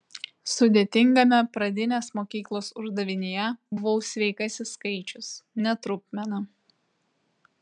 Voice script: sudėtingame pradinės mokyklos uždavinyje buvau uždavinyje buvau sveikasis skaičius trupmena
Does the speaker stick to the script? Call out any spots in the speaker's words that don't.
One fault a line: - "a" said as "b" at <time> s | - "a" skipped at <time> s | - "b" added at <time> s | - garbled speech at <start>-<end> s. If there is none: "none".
- "uždavinyje buvau" skipped at 4.0 s
- "ne" added at 5.7 s